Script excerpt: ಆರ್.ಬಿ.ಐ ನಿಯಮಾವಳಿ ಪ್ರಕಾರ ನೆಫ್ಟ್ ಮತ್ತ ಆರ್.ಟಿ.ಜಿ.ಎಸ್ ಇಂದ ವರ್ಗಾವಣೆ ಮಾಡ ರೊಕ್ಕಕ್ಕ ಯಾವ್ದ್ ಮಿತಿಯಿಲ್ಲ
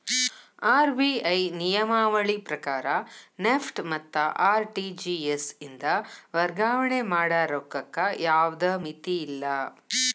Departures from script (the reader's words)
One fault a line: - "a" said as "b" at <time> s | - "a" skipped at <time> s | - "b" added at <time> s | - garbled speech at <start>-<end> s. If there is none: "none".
none